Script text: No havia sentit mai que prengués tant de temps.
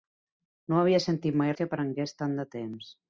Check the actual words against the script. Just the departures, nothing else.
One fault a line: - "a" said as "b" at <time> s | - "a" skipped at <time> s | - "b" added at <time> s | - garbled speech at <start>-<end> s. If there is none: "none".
none